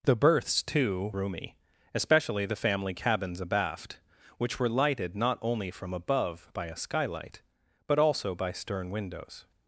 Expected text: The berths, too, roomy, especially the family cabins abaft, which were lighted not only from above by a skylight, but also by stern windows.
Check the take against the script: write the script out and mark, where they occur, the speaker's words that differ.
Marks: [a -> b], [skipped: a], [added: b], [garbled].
The berths, too, roomy, especially the family cabins abaft, which were lighted not only from above by a skylight, but also by stern windows.